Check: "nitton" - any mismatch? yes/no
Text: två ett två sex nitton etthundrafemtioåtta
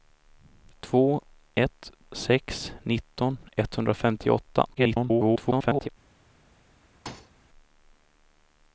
no